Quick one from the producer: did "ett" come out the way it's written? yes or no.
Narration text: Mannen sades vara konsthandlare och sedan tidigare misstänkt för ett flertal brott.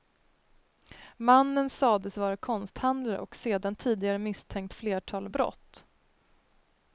no